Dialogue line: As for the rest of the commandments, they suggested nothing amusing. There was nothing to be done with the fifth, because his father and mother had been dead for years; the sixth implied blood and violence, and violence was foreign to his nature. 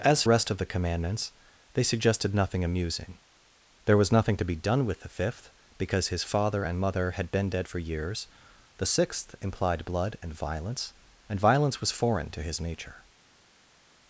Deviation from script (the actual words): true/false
true